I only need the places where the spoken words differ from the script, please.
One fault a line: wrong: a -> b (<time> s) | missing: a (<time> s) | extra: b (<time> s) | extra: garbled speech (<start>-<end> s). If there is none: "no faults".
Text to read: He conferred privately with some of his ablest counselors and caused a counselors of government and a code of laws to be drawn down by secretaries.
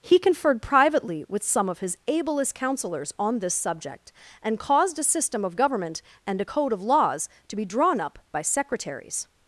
extra: on this subject (3.2 s)
wrong: counselors -> system (5.0 s)
wrong: down -> up (8.0 s)